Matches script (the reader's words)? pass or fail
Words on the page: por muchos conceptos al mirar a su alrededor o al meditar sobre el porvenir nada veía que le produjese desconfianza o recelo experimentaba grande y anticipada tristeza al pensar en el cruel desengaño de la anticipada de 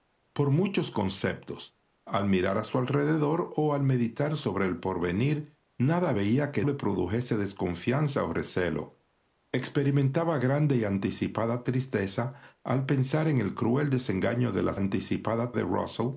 pass